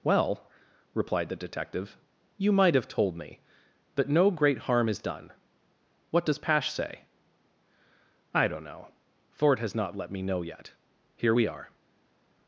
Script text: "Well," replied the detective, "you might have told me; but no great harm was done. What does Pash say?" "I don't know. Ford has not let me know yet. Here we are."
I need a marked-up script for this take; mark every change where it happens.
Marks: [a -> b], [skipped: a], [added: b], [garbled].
"Well," replied the detective, "you might have told me; but no great harm [was -> is] done. What does Pash say?" "I don't know. Ford has not let me know yet. Here we are."